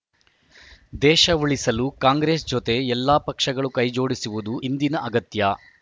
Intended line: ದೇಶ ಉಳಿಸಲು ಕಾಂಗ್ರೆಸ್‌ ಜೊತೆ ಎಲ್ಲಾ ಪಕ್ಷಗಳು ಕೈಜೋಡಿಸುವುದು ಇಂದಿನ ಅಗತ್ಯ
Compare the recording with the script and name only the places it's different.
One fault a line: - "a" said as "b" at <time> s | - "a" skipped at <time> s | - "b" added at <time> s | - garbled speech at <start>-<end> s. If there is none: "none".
none